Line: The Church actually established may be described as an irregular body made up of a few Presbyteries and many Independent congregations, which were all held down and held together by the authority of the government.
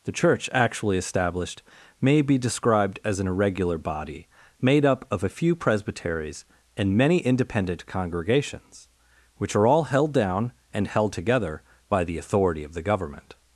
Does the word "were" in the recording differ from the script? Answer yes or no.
yes